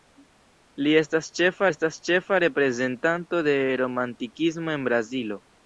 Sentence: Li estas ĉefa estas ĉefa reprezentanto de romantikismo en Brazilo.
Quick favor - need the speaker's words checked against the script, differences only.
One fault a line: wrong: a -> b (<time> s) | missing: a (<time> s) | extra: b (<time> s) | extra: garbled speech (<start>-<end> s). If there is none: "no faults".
no faults